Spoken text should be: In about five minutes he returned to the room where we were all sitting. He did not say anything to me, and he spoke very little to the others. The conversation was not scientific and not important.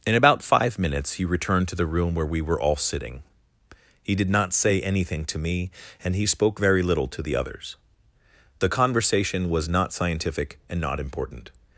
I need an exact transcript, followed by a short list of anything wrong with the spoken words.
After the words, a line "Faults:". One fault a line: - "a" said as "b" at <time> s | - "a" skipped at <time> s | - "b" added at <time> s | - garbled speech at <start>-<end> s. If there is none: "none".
In about five minutes he returned to the room where we were all sitting. He did not say anything to me, and he spoke very little to the others. The conversation was not scientific and not important.
Faults:
none